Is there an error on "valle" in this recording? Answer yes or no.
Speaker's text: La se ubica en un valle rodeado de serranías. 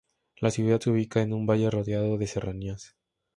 no